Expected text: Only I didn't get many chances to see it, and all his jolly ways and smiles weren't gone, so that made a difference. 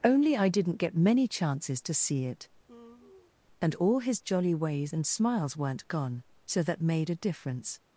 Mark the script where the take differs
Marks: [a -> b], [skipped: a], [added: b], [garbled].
Only I didn't get many chances to see it, and all his jolly ways and smiles weren't gone, so that made a difference.